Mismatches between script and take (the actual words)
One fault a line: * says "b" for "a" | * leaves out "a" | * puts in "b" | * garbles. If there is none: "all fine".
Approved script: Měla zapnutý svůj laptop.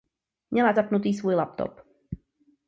all fine